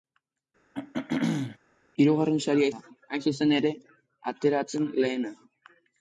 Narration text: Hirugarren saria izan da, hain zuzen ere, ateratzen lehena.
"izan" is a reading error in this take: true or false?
true